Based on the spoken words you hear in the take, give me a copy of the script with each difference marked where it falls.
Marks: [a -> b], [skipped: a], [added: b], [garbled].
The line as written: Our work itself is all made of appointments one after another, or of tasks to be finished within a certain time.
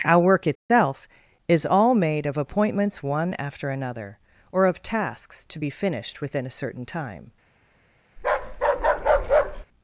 Our work itself is all made of appointments one after another, or of tasks to be finished within a certain time.